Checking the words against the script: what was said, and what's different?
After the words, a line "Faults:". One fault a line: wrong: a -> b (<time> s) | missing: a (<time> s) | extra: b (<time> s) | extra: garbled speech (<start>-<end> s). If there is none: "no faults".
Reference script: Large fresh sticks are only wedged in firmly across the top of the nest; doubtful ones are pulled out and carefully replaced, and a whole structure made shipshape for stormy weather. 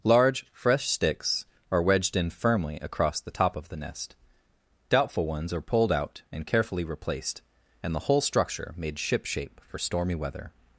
Large fresh sticks are wedged in firmly across the top of the nest; doubtful ones are pulled out and carefully replaced, and the whole structure made shipshape for stormy weather.
Faults:
missing: only (1.8 s)
wrong: a -> the (7.9 s)